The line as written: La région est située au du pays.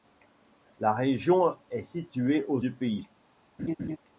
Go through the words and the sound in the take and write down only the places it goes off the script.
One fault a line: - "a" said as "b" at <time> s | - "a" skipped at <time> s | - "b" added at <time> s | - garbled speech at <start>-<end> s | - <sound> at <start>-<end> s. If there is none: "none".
- laugh at 3.6-4.0 s